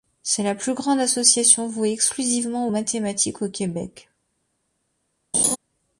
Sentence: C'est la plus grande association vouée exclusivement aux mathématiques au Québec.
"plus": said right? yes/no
yes